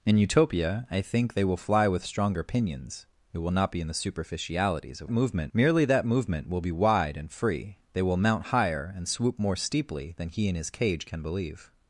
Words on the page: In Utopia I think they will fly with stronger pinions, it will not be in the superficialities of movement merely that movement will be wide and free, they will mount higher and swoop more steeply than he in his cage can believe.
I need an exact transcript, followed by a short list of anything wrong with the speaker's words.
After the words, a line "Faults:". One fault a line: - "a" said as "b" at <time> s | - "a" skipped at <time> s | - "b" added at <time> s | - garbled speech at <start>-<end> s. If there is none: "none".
In Utopia I think they will fly with stronger pinions, it will not be in the superficialities of movement merely that movement will be wide and free, they will mount higher and swoop more steeply than he in his cage can believe.
Faults:
none